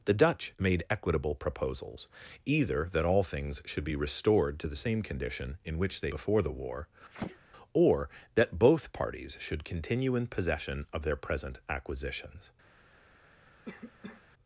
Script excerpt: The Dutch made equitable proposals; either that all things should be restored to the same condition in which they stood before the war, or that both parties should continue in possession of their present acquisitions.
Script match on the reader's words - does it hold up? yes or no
no